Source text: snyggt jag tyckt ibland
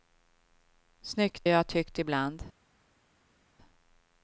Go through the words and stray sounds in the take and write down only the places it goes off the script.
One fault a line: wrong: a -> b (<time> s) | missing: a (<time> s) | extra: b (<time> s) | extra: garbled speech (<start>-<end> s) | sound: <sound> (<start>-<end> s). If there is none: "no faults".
no faults